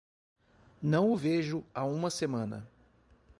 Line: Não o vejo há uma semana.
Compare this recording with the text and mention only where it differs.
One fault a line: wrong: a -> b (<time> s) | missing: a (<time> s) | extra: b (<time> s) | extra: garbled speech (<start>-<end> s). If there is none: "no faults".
no faults